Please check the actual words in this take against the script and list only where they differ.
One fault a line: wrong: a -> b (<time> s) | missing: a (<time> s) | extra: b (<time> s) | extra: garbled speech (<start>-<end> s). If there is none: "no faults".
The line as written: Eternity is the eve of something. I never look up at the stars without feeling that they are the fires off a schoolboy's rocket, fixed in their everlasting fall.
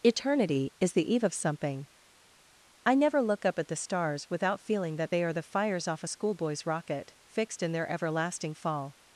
no faults